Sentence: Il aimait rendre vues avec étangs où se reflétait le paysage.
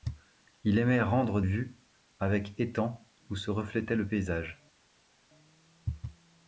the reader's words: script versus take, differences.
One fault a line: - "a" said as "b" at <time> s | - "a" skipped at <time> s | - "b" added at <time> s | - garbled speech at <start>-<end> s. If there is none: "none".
none